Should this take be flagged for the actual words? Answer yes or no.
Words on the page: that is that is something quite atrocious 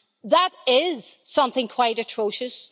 yes